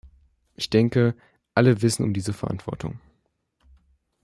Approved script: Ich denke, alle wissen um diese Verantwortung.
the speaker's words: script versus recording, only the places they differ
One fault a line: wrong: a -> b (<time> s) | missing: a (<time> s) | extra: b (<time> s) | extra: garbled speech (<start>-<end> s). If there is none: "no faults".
no faults